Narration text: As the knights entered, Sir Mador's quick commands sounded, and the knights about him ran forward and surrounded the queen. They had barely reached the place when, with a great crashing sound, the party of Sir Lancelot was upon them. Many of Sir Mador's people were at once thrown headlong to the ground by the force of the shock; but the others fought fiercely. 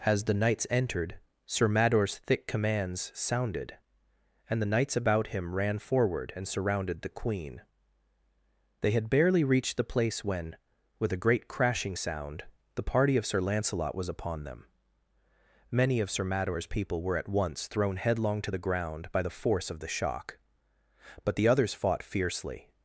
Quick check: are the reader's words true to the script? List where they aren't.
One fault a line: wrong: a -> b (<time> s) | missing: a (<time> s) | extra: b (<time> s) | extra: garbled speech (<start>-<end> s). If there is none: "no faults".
wrong: quick -> thick (2.2 s)